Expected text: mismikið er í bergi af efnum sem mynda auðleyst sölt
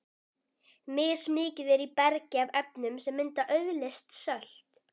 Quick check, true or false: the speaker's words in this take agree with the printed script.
true